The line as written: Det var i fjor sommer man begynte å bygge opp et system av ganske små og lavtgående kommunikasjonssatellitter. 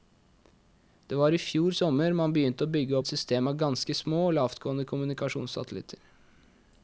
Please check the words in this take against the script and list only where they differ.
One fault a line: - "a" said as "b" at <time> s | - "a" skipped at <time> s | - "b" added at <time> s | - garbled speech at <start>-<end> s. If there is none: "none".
- "opp" skipped at 3.0 s